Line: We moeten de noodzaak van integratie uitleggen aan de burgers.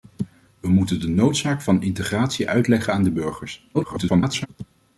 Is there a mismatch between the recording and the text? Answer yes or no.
yes